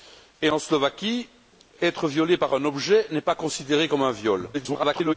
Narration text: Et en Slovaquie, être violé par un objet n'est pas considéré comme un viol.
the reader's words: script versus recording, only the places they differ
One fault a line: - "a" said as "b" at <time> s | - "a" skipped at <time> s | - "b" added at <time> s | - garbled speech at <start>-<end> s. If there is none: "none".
- garbled speech at 4.5-5.1 s